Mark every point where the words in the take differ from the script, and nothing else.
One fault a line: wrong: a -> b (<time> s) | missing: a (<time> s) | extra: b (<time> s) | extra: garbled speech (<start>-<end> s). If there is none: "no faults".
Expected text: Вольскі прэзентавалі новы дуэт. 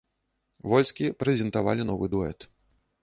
no faults